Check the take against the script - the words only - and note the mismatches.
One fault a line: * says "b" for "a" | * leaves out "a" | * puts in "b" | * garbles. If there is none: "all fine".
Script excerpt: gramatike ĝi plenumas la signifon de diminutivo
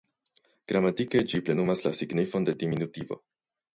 all fine